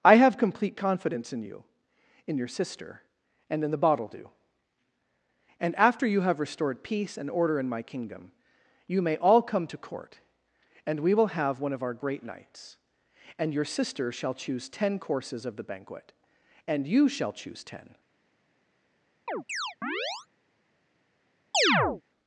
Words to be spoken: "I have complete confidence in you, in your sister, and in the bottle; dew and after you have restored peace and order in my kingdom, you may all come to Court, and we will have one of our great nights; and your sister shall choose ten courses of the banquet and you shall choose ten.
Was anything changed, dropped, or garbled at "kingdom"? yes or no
no